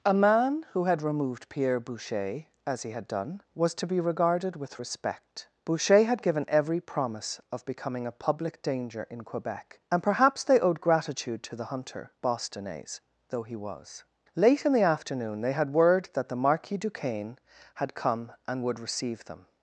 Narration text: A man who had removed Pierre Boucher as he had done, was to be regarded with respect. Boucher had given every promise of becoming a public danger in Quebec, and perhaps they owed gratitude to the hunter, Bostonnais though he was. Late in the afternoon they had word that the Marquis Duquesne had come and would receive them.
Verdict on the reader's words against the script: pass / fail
pass